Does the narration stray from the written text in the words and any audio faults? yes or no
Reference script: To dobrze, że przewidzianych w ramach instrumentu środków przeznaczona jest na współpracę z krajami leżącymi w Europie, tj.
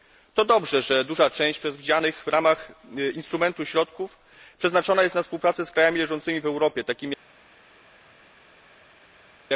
yes